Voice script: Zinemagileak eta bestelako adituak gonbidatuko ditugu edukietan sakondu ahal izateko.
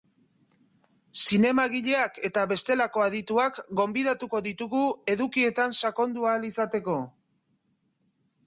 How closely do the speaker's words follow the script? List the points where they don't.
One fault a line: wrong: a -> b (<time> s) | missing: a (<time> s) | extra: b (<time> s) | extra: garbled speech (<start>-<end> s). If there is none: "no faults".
no faults